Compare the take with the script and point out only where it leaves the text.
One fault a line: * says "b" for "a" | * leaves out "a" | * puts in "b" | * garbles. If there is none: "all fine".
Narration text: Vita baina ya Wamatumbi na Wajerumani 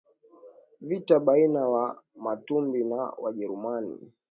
all fine